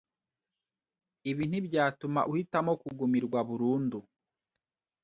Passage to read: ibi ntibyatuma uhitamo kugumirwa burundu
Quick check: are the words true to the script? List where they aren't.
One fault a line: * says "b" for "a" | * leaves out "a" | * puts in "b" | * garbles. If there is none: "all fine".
all fine